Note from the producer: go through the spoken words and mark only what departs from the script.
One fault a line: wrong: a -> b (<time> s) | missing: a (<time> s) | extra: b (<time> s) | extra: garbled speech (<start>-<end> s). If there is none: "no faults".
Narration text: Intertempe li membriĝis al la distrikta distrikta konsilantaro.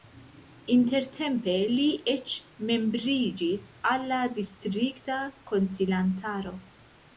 extra: eĉ (2.1 s)
missing: distrikta (5.2 s)